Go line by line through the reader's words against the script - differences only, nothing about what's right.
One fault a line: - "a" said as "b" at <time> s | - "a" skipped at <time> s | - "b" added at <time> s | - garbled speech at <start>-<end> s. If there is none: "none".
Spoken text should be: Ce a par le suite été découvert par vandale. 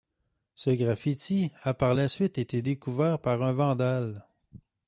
- "graffiti" added at 0.7 s
- "le" said as "la" at 1.9 s
- "un" added at 3.4 s